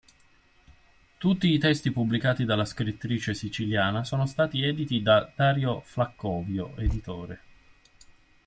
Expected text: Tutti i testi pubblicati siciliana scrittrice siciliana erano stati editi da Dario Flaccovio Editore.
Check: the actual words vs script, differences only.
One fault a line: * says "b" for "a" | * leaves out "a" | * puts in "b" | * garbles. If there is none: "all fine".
* says "dalla" for "siciliana"
* says "sono" for "erano"